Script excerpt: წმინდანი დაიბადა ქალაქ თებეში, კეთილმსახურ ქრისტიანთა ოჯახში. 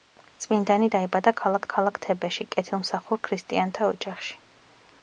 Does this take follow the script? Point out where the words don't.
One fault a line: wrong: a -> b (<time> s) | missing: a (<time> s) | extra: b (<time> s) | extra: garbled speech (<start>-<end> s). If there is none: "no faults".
extra: ქალაქ (1.7 s)